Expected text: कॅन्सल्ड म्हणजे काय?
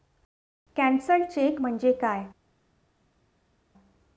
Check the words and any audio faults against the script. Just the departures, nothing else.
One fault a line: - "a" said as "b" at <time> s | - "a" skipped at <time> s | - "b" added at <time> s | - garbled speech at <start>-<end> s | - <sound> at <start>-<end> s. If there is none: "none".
- "चेक" added at 1.2 s